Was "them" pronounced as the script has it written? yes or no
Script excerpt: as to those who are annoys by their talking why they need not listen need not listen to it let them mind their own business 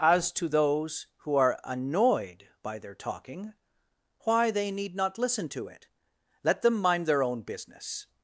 yes